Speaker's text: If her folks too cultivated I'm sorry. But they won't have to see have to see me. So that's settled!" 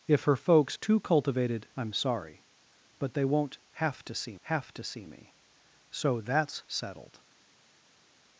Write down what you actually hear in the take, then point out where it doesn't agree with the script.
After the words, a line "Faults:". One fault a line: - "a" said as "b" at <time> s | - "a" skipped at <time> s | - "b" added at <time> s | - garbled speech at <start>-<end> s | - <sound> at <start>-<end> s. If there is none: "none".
If her folks too cultivated I'm sorry. But they won't have to see have to see me. So that's settled!"
Faults:
none